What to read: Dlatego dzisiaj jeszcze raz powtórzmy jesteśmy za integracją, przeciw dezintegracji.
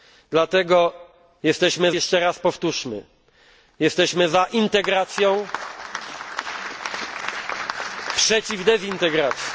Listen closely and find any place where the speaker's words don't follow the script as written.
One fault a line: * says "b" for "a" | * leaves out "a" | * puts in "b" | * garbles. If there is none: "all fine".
* says "jesteśmy" for "dzisiaj"